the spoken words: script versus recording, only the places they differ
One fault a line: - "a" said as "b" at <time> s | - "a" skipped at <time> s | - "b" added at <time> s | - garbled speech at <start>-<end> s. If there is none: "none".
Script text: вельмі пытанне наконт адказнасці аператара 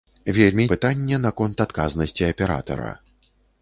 none